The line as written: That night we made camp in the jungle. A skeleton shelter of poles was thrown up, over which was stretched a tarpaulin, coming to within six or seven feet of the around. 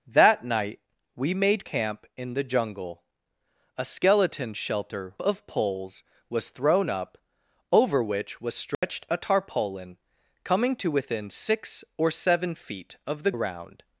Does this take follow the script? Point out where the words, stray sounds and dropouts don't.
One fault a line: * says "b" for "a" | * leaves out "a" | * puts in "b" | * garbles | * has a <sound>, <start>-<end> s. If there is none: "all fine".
* has a dropout, 8.7-8.8 s